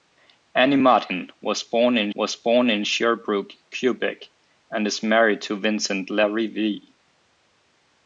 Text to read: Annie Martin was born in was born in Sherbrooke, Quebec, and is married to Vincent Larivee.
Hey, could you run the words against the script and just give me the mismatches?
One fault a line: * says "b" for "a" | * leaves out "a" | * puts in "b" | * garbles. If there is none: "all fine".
all fine